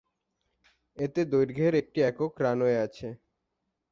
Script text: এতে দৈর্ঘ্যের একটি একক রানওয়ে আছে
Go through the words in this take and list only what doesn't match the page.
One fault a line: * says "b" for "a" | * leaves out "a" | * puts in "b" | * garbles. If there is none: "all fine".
all fine